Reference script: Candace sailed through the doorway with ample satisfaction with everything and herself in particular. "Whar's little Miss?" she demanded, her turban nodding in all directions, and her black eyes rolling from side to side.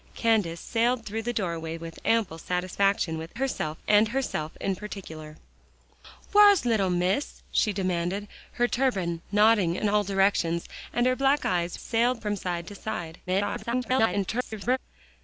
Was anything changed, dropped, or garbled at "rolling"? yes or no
yes